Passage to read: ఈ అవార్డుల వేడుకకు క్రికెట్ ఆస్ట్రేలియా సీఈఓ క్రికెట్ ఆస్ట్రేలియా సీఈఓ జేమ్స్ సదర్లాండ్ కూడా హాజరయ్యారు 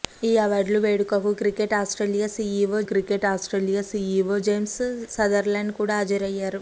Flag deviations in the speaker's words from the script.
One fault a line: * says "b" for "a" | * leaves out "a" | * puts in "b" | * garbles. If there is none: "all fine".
all fine